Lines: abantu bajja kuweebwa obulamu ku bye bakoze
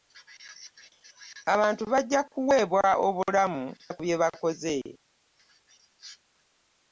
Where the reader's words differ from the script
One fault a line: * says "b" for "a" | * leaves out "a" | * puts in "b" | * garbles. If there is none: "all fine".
all fine